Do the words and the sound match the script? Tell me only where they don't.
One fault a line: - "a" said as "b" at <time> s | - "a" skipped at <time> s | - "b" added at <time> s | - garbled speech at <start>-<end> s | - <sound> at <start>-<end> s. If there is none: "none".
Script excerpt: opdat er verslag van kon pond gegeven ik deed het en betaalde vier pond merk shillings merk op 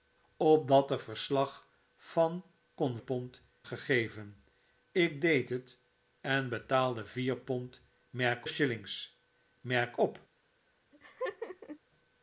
- laugh at 10.9-11.8 s